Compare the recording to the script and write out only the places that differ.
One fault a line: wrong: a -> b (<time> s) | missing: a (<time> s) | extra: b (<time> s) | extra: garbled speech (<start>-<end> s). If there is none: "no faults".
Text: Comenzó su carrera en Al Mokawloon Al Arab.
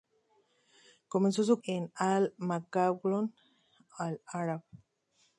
missing: carrera (1.6 s)